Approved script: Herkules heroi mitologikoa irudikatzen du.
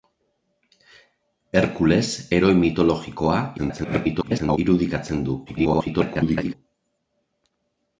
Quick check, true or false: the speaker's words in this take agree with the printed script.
false